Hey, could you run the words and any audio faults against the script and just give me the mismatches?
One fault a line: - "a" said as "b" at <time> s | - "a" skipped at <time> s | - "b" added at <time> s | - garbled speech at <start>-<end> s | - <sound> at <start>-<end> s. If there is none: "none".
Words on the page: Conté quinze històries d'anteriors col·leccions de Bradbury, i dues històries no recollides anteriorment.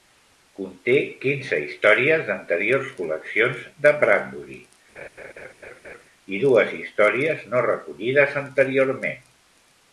- laugh at 5.0-6.0 s